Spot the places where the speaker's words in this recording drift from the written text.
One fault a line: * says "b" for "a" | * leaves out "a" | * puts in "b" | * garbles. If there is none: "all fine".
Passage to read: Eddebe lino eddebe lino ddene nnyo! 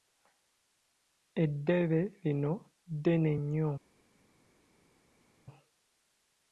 * leaves out "eddebe lino"